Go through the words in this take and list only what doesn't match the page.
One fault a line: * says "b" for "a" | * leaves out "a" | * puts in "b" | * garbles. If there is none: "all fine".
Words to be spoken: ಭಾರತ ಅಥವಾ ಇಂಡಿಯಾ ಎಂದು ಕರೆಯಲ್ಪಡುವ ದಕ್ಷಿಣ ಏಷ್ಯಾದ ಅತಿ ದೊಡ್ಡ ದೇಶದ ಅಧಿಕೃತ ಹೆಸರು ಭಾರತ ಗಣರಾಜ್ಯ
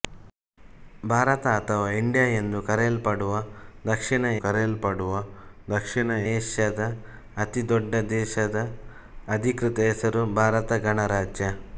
* puts in "ಕರೆಯಲ್ಪಡುವ ದಕ್ಷಿಣ"